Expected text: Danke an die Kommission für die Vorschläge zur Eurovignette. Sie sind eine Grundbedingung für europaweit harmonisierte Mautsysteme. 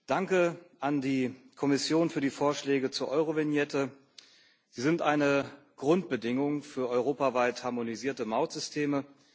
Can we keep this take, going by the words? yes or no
yes